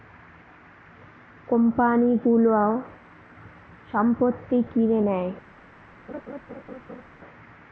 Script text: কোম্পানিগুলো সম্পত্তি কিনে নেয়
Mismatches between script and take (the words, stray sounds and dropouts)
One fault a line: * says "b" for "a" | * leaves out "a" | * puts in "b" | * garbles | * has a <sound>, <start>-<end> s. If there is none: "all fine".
* has a laugh, 6.1-7.0 s